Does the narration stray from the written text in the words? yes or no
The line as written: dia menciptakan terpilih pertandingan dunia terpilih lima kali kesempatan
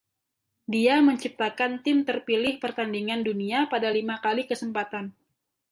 yes